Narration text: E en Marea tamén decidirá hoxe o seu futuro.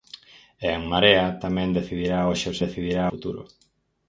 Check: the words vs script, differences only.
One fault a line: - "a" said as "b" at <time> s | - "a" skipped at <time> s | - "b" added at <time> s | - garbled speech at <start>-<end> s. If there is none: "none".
- "seu" said as "decidirá" at 2.6 s